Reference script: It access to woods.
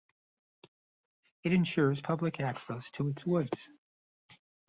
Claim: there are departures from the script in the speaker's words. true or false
true